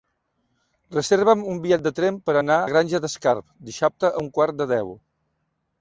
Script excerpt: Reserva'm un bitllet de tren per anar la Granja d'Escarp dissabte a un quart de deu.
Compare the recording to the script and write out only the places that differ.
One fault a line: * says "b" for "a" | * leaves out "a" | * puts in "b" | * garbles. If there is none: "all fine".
all fine